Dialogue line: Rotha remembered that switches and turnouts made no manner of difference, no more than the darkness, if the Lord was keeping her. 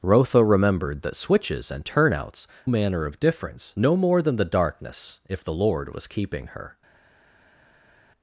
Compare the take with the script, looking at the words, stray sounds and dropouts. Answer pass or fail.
fail